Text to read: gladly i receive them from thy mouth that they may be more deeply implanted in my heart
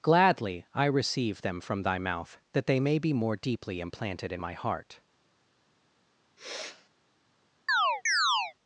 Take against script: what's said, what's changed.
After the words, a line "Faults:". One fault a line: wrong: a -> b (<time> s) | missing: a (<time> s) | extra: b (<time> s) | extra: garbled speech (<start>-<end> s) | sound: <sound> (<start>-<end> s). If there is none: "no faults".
gladly i receive them from thy mouth that they may be more deeply implanted in my heart
Faults:
sound: sniff (6.4-6.9 s)
sound: chirp (7.7-8.5 s)